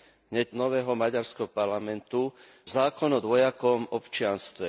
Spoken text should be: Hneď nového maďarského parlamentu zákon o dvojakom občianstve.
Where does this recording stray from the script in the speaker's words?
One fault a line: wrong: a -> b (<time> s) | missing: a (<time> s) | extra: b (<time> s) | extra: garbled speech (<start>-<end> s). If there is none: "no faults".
no faults